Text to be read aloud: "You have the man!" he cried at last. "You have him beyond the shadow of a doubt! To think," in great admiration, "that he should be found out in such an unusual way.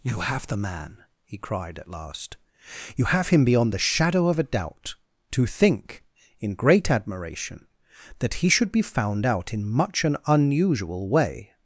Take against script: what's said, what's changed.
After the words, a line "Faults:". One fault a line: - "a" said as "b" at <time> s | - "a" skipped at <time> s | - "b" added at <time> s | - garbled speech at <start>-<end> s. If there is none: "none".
"You have the man!" he cried at last. "You have him beyond the shadow of a doubt! To think," in great admiration, "that he should be found out in much an unusual way.
Faults:
- "such" said as "much" at 9.7 s